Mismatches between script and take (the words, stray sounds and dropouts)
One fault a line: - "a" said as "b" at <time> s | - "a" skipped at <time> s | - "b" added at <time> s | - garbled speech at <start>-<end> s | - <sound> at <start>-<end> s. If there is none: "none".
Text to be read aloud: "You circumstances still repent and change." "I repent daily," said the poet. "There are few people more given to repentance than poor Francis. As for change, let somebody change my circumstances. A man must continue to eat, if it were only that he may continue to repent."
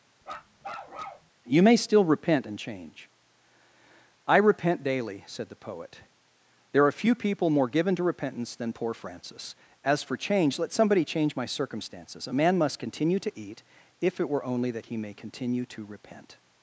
- bark at 0.2-1.3 s
- "circumstances" said as "may" at 1.6 s